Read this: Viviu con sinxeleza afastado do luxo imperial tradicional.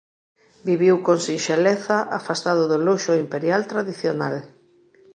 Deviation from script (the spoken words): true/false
false